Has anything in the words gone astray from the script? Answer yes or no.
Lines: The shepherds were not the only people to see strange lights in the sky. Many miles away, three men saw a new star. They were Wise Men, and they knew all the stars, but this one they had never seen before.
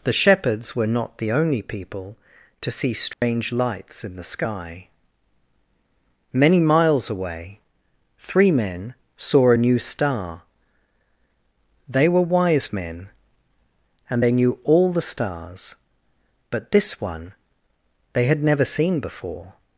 no